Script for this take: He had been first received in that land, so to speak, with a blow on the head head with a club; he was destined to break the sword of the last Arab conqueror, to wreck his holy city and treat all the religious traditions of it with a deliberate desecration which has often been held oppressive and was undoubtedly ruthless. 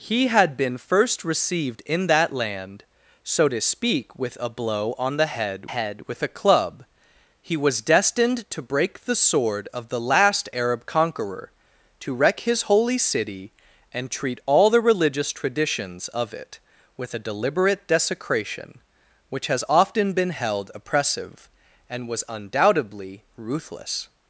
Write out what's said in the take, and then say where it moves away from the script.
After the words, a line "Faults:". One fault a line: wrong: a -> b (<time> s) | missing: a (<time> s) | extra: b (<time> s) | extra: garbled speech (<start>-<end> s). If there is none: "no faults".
He had been first received in that land, so to speak, with a blow on the head head with a club; he was destined to break the sword of the last Arab conqueror, to wreck his holy city and treat all the religious traditions of it with a deliberate desecration which has often been held oppressive and was undoubtedly ruthless.
Faults:
no faults